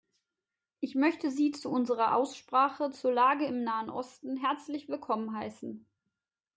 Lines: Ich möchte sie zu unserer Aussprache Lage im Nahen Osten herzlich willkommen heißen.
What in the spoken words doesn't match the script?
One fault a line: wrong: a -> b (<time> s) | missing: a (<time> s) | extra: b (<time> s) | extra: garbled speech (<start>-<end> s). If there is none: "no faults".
extra: zur (2.9 s)